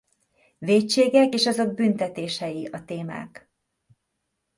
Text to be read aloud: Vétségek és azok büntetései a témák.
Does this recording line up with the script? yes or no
yes